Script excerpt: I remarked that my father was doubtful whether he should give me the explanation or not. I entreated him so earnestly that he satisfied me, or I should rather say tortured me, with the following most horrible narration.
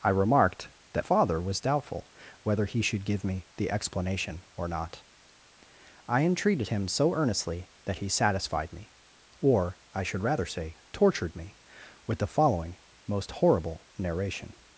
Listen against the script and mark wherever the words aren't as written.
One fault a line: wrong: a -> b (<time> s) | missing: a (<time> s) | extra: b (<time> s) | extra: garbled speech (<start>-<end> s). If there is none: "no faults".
missing: my (1.1 s)